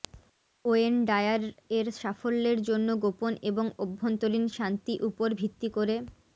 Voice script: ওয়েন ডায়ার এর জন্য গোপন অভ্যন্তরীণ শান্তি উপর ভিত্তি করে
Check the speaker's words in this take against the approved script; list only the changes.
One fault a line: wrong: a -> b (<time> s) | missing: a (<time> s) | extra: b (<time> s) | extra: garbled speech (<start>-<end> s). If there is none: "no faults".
extra: সাফল্যের (2.0 s)
extra: এবং (3.4 s)